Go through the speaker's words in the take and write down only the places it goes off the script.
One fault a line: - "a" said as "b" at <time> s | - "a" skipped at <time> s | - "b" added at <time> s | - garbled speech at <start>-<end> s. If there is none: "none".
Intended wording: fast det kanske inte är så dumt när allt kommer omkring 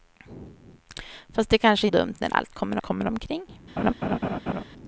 - "inte är så" skipped at 1.9 s
- "kommer" added at 2.8 s